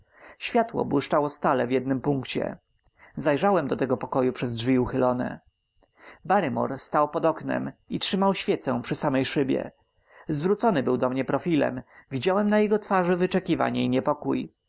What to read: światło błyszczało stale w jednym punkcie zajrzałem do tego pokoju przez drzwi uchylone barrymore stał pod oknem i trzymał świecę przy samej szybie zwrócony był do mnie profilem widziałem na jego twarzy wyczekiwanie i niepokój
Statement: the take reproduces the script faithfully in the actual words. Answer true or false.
true